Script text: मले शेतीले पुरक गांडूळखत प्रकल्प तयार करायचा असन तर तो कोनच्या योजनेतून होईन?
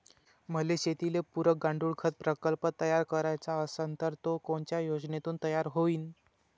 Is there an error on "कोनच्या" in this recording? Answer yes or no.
no